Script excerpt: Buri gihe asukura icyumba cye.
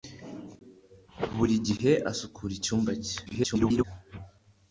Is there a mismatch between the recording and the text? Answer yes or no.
yes